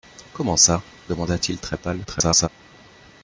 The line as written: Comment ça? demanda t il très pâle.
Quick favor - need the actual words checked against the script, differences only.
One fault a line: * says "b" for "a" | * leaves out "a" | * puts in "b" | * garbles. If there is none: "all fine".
* garbles